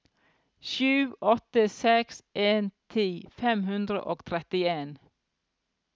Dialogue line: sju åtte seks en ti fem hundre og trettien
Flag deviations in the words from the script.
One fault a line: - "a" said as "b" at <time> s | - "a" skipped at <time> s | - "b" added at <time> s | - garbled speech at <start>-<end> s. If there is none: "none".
none